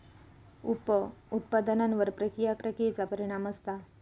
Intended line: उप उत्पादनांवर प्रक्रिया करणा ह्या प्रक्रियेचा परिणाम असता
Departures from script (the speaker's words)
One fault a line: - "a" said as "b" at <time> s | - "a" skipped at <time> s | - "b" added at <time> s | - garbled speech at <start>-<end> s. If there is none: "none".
- "करणा ह्या" skipped at 2.5 s